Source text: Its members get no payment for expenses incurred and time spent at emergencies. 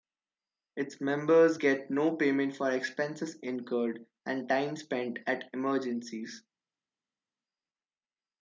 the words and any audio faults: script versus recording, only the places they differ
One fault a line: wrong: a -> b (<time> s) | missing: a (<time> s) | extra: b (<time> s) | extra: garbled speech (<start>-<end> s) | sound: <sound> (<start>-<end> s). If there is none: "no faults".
no faults